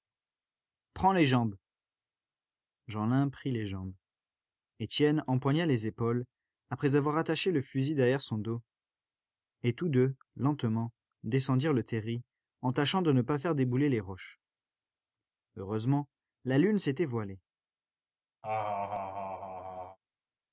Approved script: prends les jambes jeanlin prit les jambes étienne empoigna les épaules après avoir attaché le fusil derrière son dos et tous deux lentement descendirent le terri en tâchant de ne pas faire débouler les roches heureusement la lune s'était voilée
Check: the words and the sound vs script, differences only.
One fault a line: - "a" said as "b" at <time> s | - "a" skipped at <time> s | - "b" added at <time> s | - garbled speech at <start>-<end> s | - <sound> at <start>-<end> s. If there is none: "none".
- laugh at 18.4-20.0 s